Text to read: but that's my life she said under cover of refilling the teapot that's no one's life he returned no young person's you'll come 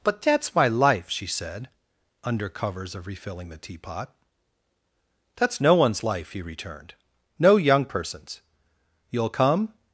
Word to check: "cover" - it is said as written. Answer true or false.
false